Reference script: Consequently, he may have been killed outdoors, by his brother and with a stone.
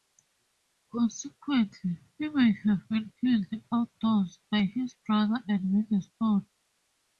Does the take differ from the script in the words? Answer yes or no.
no